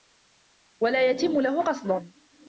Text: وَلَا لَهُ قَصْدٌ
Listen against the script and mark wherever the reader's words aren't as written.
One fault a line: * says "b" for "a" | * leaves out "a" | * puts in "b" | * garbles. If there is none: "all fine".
* puts in "يَتِمُّ"